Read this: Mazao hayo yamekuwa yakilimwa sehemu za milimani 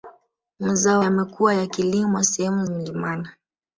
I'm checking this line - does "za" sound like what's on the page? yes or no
no